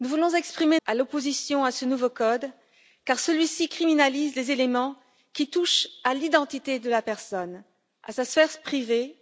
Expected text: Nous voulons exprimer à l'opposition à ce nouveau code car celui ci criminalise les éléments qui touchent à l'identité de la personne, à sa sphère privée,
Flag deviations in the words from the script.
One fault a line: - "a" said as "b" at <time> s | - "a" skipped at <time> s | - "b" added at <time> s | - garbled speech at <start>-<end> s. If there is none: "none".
none